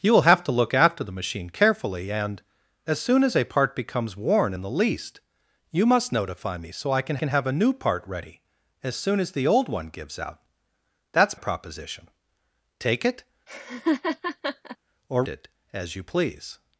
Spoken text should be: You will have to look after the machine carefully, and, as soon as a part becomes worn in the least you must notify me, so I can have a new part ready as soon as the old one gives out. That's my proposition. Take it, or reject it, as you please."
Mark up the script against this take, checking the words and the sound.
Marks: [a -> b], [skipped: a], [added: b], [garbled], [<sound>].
You will have to look after the machine carefully, and, as soon as a part becomes worn in the least you must notify me, so I can [added: can] have a new part ready as soon as the old one gives out. That's [skipped: my] proposition. Take it, [laugh] or [skipped: reject] it, as you please."